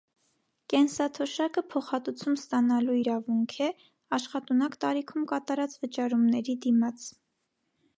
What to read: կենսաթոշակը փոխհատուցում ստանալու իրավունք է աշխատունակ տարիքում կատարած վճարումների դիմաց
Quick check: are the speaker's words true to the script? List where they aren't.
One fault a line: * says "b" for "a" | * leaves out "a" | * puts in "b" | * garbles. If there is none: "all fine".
all fine